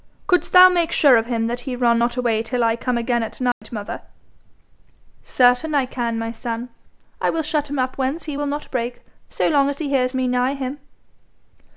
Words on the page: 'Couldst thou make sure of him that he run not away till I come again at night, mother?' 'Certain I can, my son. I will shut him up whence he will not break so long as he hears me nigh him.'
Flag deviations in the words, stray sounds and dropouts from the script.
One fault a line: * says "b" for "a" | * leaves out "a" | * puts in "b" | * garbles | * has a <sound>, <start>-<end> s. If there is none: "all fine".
* has a dropout, 3.5-3.6 s